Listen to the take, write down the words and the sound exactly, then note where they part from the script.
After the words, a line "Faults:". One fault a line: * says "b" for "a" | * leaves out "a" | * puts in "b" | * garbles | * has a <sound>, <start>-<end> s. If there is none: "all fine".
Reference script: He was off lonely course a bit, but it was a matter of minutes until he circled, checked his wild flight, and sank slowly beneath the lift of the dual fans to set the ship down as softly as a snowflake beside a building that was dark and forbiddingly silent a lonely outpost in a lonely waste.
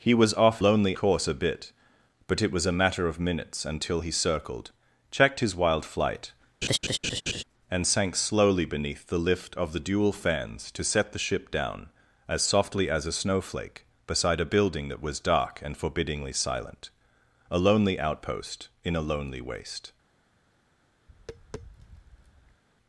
He was off lonely course a bit, but it was a matter of minutes until he circled, checked his wild flight, and sank slowly beneath the lift of the dual fans to set the ship down as softly as a snowflake beside a building that was dark and forbiddingly silent a lonely outpost in a lonely waste.
Faults:
* has a laugh, 6.6-7.4 s
* has a tap, 21.1-22.6 s